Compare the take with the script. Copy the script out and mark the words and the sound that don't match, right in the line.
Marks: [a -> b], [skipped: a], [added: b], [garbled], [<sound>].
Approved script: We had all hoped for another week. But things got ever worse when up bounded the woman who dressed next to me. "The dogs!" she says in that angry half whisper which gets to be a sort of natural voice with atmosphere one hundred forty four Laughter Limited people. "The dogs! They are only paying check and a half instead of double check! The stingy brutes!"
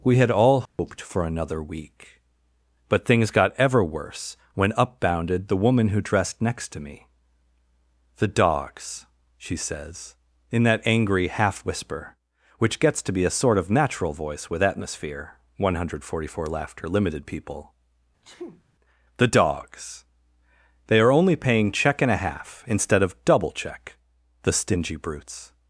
We had all hoped [dropout] for another week. But things got ever worse when up bounded the woman who dressed next to me. "The dogs!" she says in that angry half whisper which gets to be a sort of natural voice with atmosphere one hundred forty four Laughter Limited people. [sneeze] "The dogs! They are only paying check and a half instead of double check! The stingy brutes!"